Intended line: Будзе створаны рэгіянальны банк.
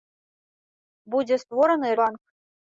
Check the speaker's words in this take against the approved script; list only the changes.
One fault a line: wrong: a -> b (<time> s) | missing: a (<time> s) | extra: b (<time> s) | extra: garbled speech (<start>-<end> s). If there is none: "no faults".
missing: рэгіянальны (1.9 s)